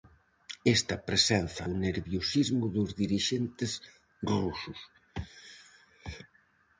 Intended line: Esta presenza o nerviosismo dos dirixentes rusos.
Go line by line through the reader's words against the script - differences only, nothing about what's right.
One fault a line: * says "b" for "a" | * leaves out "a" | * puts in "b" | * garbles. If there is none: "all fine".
all fine